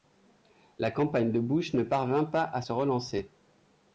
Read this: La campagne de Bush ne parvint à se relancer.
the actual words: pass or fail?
fail